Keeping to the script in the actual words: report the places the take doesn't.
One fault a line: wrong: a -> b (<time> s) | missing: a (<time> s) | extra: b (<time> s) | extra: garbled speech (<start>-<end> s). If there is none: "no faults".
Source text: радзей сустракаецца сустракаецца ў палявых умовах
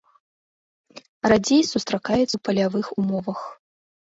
missing: сустракаецца (2.3 s)